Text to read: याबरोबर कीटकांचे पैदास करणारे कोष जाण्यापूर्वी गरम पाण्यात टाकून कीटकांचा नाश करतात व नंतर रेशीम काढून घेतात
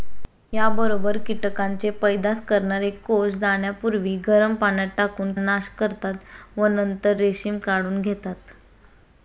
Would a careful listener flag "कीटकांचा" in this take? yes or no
yes